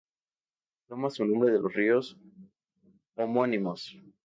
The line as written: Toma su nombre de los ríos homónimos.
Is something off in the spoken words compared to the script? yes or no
no